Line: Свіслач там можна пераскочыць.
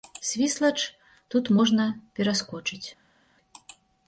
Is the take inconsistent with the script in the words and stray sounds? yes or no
yes